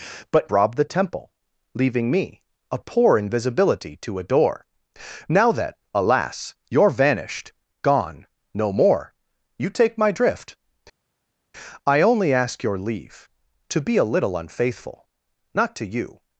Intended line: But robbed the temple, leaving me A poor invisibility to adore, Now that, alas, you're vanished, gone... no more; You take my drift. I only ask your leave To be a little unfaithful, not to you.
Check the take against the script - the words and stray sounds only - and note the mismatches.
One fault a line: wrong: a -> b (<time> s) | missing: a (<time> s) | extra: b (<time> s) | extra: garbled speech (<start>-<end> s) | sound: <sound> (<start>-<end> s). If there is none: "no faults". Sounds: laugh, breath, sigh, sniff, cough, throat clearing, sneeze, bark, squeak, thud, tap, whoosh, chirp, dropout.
no faults